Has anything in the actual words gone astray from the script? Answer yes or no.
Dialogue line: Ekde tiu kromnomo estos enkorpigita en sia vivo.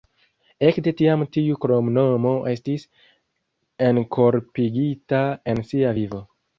yes